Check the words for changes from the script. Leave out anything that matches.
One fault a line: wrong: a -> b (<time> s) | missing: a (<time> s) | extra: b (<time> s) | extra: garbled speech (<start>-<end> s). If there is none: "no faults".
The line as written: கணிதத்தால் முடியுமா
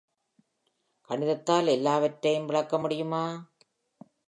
extra: எல்லாவற்றையும் விளக்க (1.7 s)